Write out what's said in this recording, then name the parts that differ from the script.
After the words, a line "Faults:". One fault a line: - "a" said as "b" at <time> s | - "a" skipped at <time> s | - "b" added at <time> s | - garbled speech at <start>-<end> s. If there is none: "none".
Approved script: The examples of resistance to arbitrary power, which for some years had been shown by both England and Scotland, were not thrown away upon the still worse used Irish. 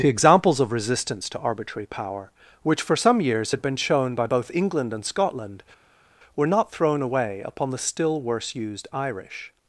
The examples of resistance to arbitrary power, which for some years had been shown by both England and Scotland, were not thrown away upon the still worse used Irish.
Faults:
none